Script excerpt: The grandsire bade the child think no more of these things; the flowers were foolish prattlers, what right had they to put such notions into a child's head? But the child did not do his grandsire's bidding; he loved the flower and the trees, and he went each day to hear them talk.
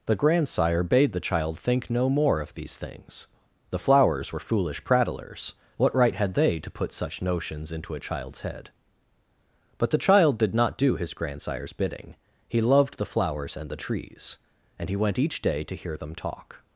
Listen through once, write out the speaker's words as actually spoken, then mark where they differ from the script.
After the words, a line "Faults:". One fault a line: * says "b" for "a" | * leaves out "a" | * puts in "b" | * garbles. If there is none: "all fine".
The grandsire bade the child think no more of these things; the flowers were foolish prattlers, what right had they to put such notions into a child's head? But the child did not do his grandsire's bidding; he loved the flowers and the trees, and he went each day to hear them talk.
Faults:
* says "flowers" for "flower"